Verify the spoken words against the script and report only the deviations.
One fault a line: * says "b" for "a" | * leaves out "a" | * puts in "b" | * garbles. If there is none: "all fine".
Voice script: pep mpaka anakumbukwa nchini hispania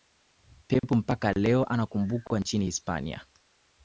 * puts in "leo"